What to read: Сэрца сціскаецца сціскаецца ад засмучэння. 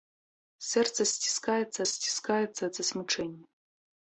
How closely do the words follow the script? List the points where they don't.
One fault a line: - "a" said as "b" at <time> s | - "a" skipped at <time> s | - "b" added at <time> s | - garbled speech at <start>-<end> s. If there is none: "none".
none